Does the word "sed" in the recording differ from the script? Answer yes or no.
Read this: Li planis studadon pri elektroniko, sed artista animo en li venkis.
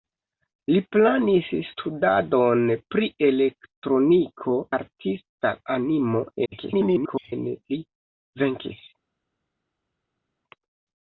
yes